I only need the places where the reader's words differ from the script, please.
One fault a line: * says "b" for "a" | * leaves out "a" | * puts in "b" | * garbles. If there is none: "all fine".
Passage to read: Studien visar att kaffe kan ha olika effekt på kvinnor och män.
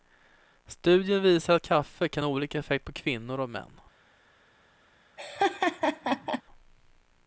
all fine